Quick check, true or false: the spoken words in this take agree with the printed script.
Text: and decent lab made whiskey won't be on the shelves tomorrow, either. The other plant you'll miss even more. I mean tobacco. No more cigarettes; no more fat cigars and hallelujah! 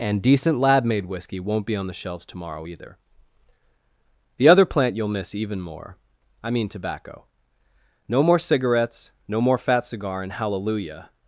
false